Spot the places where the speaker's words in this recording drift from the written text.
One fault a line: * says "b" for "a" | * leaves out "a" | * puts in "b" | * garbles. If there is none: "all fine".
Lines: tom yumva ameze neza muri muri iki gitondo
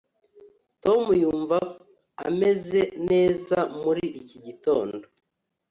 * leaves out "muri"